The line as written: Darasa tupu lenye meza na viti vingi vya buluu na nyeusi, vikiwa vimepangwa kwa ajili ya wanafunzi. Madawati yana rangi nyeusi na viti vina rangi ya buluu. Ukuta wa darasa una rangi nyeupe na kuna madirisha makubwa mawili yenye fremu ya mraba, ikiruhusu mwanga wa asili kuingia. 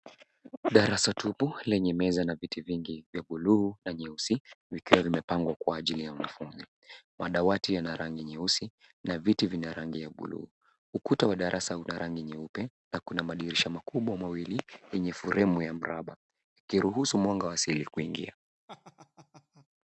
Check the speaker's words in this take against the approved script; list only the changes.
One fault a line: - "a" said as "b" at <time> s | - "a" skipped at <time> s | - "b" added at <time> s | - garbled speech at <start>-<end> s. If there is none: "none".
none